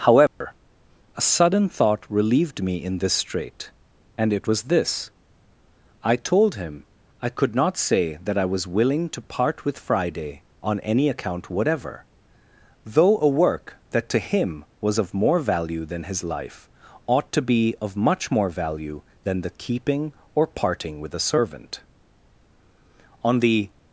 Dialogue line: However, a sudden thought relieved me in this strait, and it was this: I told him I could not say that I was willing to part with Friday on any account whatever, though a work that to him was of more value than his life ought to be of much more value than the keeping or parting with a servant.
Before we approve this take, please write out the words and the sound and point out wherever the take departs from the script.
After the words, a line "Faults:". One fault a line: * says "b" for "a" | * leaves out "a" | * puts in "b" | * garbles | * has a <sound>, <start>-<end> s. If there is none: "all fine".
However, a sudden thought relieved me in this strait, and it was this: I told him I could not say that I was willing to part with Friday on any account whatever, though a work that to him was of more value than his life ought to be of much more value than the keeping or parting with a servant. On the
Faults:
* has a dropout, 0.3-0.4 s
* puts in "On the"